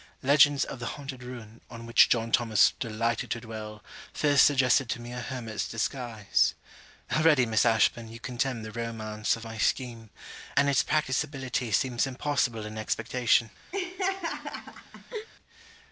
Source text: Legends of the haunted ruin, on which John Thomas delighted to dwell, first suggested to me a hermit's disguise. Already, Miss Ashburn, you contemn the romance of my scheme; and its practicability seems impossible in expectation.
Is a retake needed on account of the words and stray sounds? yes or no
yes